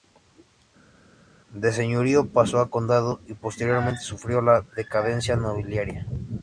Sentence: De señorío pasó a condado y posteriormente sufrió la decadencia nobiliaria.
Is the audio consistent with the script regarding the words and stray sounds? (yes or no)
yes